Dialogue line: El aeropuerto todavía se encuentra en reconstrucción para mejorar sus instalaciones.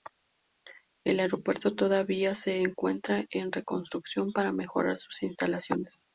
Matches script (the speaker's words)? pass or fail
pass